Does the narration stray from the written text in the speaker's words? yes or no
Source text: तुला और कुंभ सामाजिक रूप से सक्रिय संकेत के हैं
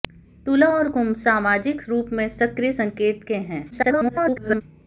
yes